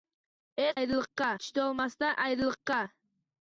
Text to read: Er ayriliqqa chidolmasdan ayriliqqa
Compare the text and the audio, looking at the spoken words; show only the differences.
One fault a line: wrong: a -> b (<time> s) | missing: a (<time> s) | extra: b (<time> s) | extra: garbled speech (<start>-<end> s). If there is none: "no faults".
no faults